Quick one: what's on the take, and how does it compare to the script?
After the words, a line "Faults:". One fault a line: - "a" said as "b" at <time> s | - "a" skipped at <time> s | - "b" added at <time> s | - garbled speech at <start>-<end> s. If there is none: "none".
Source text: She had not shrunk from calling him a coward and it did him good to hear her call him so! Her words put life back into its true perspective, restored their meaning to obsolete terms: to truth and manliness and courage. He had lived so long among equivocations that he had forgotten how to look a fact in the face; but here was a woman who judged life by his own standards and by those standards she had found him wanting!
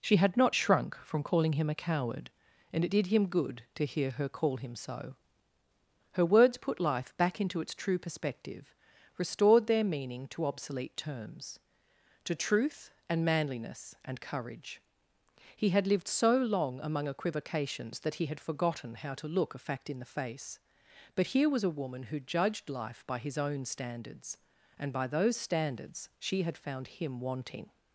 She had not shrunk from calling him a coward and it did him good to hear her call him so! Her words put life back into its true perspective, restored their meaning to obsolete terms: to truth and manliness and courage. He had lived so long among equivocations that he had forgotten how to look a fact in the face; but here was a woman who judged life by his own standards and by those standards she had found him wanting!
Faults:
none